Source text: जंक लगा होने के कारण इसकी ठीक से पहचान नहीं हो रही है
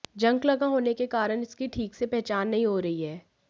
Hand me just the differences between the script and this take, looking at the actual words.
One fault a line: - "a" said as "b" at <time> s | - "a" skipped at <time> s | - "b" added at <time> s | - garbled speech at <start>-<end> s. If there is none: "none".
none